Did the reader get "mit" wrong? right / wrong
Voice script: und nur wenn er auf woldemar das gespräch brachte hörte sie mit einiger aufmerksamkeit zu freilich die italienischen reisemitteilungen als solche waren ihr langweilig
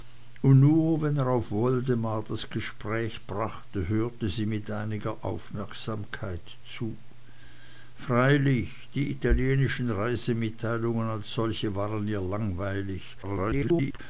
right